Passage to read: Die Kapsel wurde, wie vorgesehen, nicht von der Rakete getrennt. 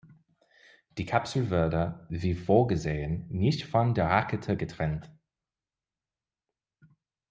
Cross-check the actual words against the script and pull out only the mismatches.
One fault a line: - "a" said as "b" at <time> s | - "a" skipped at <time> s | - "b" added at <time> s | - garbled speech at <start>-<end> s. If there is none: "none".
none